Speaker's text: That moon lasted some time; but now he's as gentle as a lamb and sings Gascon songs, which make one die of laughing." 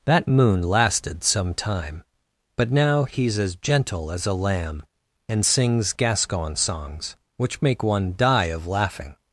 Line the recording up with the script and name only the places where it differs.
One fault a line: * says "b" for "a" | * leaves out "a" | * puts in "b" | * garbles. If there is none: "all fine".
all fine